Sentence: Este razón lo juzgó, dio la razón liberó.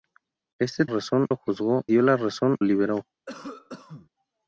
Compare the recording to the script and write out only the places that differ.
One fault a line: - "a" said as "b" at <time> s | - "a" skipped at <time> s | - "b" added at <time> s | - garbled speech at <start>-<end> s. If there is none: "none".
none